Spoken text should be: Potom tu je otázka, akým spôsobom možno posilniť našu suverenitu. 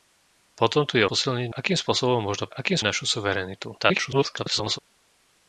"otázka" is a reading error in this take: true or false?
true